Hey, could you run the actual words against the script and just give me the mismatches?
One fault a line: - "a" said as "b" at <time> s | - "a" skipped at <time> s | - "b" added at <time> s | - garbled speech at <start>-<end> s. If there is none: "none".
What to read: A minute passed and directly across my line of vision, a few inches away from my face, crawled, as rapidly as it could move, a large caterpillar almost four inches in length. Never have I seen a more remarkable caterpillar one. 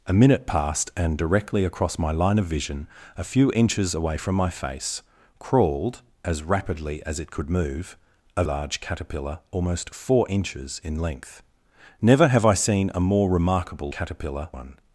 none